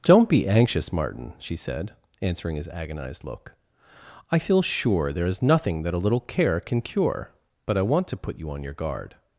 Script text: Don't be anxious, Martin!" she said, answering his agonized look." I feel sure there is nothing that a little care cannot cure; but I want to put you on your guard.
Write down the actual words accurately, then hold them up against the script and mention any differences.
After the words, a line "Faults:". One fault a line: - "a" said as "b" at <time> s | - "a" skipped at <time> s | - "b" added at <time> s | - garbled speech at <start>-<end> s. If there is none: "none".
Don't be anxious, Martin!" she said, answering his agonized look." I feel sure there is nothing that a little care can cure; but I want to put you on your guard.
Faults:
- "cannot" said as "can" at 6.6 s